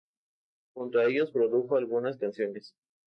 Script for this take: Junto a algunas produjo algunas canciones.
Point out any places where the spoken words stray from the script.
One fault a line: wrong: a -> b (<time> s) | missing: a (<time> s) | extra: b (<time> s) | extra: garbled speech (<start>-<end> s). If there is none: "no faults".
wrong: algunas -> ellos (1.1 s)